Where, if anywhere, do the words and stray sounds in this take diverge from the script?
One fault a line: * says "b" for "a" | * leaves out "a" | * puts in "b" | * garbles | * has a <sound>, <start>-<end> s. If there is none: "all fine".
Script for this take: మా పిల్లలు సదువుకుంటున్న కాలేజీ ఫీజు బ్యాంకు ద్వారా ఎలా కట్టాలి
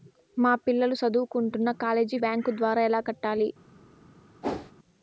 * leaves out "ఫీజు"
* has a whoosh, 4.4-4.7 s